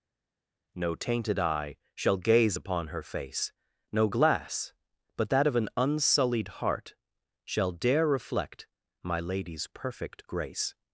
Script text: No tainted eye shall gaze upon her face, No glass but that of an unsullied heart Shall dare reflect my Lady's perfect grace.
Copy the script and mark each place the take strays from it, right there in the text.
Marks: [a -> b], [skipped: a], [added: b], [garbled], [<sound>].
No tainted eye shall gaze upon her face, No glass but that of an unsullied heart Shall dare reflect my Lady's perfect grace.